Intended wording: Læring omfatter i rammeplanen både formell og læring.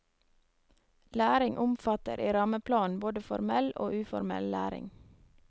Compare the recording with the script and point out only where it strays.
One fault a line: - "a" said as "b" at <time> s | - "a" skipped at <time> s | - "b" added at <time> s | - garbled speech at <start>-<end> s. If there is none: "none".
- "uformell" added at 4.0 s